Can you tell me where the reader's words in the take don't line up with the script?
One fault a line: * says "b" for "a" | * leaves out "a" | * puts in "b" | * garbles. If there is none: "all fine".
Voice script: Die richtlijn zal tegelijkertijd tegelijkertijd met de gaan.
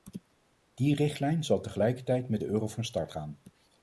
* leaves out "tegelijkertijd"
* puts in "euro van start"